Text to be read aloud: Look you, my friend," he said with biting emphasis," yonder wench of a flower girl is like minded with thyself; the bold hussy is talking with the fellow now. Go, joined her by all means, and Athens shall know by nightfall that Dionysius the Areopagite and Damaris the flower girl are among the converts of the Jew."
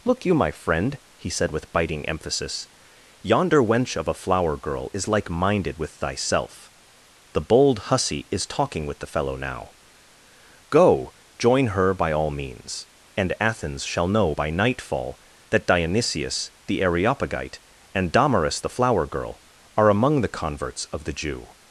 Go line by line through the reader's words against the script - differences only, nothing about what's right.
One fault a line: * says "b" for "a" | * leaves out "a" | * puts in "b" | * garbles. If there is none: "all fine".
* says "join" for "joined"